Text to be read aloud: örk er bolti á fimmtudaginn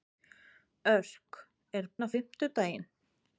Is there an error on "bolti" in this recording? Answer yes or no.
yes